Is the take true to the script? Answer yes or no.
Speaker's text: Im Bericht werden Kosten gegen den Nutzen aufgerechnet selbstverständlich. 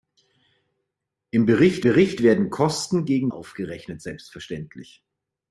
no